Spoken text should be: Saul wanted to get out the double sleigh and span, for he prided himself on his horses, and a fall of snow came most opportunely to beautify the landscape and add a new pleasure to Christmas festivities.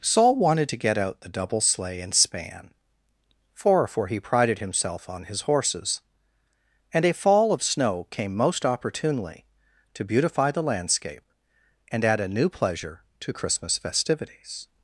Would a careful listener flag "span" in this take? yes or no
no